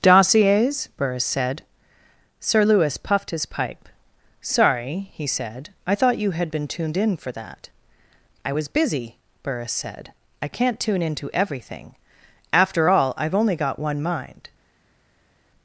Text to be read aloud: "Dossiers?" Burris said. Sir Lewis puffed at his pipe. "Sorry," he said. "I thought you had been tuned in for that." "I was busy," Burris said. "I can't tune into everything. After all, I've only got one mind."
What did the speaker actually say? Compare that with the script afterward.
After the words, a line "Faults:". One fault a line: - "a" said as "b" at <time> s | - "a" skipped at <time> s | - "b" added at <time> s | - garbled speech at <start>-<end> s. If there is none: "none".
"Dossiers?" Burris said. Sir Lewis puffed his pipe. "Sorry," he said. "I thought you had been tuned in for that." "I was busy," Burris said. "I can't tune into everything. After all, I've only got one mind."
Faults:
- "at" skipped at 3.3 s